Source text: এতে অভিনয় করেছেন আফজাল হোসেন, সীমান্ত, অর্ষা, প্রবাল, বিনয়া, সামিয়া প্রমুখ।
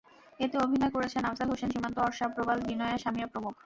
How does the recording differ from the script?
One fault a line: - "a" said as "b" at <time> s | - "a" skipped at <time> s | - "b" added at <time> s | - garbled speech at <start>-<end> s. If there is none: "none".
none